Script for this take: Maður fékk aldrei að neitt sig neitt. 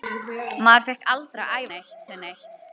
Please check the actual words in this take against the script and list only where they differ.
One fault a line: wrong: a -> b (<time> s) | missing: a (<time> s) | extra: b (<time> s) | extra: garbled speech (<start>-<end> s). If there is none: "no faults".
no faults